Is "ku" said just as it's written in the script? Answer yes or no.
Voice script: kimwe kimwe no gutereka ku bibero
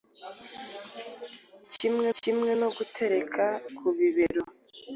yes